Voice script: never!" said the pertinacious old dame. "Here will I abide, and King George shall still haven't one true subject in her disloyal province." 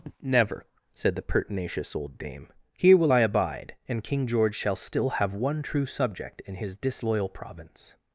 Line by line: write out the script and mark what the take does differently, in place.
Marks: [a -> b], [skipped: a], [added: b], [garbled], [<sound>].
never!" said the pertinacious old dame. "Here will I abide, and King George shall still [haven't -> have] one true subject in [her -> his] disloyal province."